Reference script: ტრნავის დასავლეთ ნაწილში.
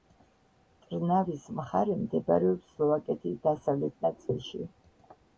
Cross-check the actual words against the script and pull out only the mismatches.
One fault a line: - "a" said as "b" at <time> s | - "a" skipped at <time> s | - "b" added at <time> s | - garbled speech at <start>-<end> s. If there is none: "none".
- "მხარე მდებარეობს სლოვაკეთის" added at 1.6 s